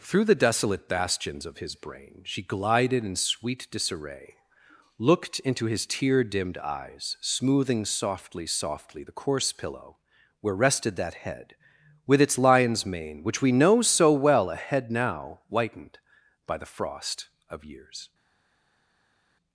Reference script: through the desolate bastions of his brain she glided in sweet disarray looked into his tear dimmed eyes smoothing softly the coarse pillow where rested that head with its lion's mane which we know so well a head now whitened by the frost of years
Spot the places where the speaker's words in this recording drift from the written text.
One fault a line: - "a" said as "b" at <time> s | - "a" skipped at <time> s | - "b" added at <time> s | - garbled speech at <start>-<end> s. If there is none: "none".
- "softly" added at 8.5 s